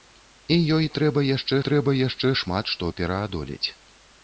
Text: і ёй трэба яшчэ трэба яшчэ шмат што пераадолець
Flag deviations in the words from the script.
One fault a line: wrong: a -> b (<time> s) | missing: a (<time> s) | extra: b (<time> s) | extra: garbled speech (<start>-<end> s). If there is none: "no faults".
no faults